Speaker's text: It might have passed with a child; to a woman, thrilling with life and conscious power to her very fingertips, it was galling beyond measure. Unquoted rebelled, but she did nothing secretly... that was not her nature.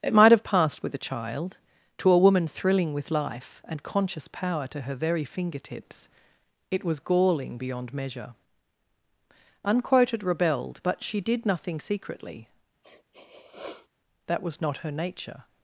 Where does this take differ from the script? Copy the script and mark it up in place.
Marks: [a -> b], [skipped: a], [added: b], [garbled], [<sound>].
It might have passed with a child; to a woman, thrilling with life and conscious power to her very fingertips, it was galling beyond measure. Unquoted rebelled, but she did nothing secretly... [sniff] that was not her nature.